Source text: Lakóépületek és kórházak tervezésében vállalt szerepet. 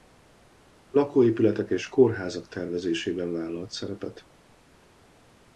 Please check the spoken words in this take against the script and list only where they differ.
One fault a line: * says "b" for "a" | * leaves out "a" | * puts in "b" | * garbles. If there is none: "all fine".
all fine